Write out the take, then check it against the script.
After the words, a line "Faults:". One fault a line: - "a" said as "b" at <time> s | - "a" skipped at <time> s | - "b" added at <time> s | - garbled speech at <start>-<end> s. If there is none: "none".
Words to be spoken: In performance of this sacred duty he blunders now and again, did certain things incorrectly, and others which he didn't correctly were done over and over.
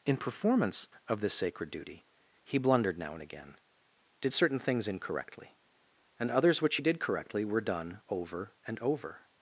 In performance of this sacred duty he blundered now and again, did certain things incorrectly, and others which he did correctly were done over and over.
Faults:
- "blunders" said as "blundered" at 2.6 s
- "didn't" said as "did" at 6.8 s